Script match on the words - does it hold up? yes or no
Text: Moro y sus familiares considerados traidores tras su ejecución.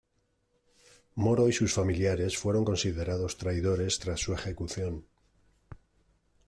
no